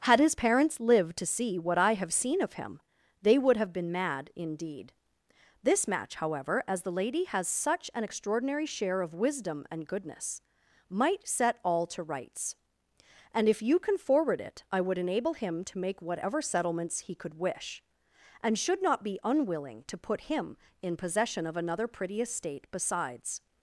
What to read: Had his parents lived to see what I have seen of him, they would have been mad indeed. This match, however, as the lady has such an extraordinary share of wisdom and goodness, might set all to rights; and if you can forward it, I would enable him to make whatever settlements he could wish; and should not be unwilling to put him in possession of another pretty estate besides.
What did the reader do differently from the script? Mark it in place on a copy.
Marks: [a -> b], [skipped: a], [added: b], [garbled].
Had his parents lived to see what I have seen of him, they would have been mad indeed. This match, however, as the lady has such an extraordinary share of wisdom and goodness, might set all to rights; and if you can forward it, I would enable him to make whatever settlements he could wish; and should not be unwilling to put him in possession of another pretty estate besides.